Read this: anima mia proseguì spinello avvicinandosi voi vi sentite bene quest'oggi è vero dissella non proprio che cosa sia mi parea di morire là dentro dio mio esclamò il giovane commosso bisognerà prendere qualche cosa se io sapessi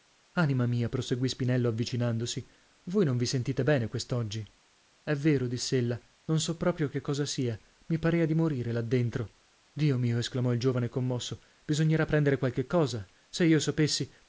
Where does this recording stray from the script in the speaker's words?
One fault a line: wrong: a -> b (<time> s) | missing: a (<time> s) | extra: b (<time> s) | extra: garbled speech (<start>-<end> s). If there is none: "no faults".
extra: non (3.0 s)
extra: so (6.4 s)